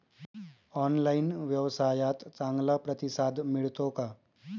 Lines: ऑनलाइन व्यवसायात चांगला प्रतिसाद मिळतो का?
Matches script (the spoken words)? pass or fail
pass